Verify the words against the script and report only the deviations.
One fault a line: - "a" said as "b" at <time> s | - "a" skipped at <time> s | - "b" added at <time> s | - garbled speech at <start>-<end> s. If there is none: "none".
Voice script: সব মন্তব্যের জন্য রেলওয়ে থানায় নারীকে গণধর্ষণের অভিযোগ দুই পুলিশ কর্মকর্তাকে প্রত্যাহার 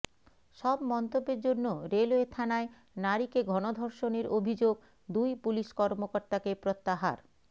none